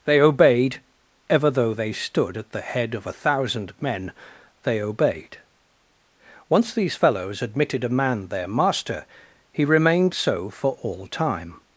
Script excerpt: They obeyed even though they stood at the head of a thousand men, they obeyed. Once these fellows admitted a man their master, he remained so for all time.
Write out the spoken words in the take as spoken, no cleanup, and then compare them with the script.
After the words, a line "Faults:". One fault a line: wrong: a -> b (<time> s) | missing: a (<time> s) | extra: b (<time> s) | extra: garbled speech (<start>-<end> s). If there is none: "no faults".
They obeyed ever though they stood at the head of a thousand men, they obeyed. Once these fellows admitted a man their master, he remained so for all time.
Faults:
wrong: even -> ever (1.3 s)